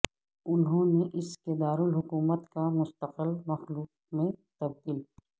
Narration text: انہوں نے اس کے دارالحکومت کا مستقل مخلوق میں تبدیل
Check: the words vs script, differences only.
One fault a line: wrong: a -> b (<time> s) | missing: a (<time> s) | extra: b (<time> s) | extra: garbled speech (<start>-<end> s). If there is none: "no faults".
no faults